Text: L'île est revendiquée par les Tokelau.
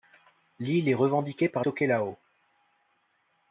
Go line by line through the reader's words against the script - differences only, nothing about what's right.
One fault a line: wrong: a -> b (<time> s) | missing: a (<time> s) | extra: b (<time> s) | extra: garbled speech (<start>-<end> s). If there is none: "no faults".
missing: les (1.7 s)